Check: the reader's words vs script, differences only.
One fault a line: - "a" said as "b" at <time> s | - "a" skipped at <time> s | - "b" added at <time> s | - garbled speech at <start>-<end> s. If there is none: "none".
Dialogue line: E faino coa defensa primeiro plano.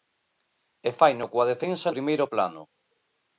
none